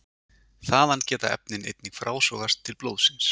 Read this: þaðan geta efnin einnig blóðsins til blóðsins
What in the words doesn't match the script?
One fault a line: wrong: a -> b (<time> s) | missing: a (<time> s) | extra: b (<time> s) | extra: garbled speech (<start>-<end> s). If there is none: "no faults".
wrong: blóðsins -> frásogast (2.0 s)